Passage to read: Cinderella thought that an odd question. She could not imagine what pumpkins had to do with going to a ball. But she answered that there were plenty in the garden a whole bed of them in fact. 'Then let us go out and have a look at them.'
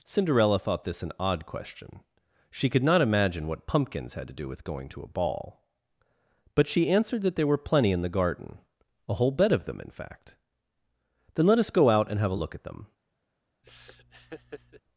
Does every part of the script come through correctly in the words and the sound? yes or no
no